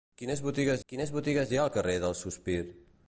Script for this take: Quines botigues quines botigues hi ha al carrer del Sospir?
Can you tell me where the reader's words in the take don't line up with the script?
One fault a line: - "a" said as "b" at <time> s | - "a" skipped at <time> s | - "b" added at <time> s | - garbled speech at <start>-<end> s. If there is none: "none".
none